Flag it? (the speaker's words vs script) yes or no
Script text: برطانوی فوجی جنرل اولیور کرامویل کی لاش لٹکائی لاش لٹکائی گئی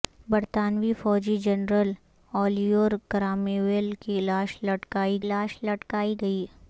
no